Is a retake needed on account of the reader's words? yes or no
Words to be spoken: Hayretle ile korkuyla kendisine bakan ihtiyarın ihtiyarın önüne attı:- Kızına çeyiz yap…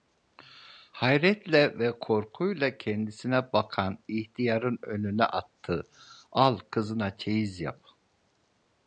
yes